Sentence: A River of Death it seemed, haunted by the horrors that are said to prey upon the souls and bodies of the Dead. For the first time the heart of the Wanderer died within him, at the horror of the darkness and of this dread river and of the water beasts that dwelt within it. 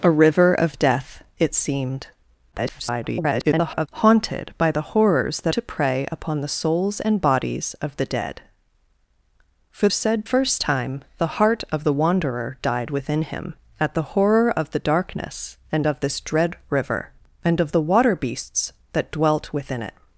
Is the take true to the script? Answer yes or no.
no